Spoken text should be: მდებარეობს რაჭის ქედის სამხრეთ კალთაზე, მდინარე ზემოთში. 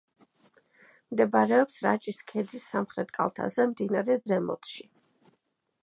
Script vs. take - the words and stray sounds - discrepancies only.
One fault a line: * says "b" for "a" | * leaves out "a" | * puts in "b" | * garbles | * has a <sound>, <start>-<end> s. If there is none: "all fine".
all fine